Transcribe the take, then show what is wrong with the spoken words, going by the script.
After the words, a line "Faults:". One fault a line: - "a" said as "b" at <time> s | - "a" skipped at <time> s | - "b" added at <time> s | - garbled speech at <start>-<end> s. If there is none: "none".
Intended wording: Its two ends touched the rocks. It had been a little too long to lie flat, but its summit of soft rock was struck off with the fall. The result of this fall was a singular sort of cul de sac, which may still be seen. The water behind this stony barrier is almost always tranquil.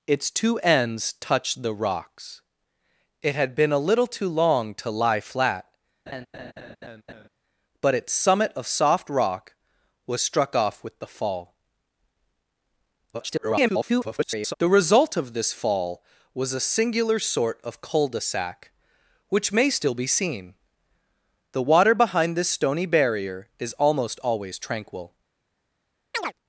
Its two ends touched the rocks. It had been a little too long to lie flat, but its summit of soft rock was struck off with the fall. [garbled] The result of this fall was a singular sort of cul de sac, which may still be seen. The water behind this stony barrier is almost always tranquil.
Faults:
- garbled speech at 13.1-14.5 s